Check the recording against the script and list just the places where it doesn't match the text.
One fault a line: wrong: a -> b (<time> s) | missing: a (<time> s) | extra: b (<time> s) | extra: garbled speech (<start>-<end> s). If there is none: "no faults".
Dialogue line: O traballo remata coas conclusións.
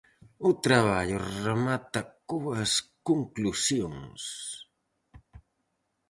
no faults